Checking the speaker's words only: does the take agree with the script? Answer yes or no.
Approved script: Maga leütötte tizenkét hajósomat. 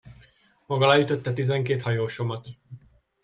yes